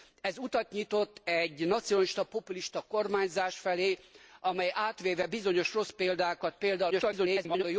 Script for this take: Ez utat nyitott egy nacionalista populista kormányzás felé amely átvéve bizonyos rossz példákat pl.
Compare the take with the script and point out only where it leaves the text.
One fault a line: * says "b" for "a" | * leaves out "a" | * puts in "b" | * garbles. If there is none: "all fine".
* garbles